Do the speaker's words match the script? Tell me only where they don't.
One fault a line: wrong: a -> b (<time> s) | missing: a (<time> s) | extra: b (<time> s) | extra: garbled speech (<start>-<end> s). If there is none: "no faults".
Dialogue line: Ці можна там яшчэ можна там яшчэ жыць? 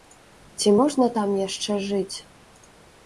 missing: можна там яшчэ (1.8 s)